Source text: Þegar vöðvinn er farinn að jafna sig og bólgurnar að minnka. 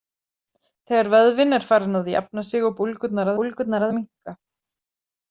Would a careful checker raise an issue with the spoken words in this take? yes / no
yes